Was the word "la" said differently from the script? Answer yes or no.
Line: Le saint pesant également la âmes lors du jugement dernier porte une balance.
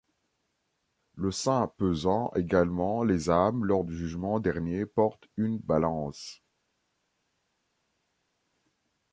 yes